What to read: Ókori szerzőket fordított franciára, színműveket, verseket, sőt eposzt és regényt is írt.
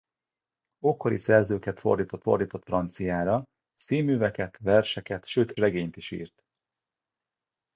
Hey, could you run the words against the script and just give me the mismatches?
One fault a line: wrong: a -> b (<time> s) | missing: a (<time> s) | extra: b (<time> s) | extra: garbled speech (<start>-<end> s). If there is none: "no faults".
extra: fordított (2.2 s)
missing: eposzt és (5.5 s)